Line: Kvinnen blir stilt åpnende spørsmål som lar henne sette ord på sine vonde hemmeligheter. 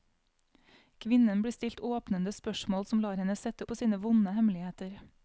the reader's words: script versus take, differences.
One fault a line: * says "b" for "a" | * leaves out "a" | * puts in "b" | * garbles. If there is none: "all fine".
* leaves out "ord"